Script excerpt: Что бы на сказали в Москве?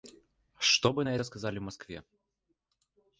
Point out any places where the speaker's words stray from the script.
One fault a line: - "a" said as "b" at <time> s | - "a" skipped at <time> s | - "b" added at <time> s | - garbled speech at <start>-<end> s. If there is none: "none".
- "это" added at 1.1 s